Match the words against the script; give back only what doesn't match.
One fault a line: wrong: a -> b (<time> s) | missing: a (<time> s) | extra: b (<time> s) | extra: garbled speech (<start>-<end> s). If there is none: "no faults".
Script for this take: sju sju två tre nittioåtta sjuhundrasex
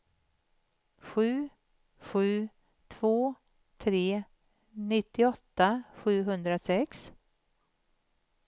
no faults